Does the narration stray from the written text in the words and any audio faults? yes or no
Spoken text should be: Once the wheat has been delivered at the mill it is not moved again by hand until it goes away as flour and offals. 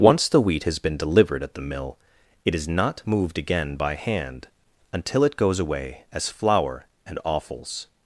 no